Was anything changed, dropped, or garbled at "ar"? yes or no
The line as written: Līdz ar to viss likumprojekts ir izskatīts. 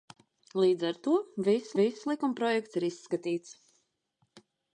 no